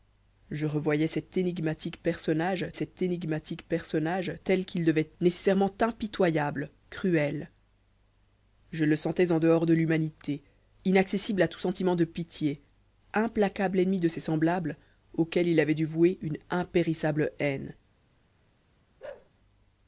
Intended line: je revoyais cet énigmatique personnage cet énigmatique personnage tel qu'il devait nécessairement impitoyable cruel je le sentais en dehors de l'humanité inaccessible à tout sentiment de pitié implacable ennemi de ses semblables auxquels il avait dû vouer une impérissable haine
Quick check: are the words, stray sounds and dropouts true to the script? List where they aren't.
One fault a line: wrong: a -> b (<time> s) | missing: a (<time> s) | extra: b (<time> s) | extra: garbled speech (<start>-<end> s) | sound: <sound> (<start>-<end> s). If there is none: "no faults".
sound: bark (19.0-19.3 s)